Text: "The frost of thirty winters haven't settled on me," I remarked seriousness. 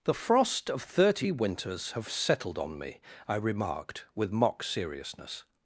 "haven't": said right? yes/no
no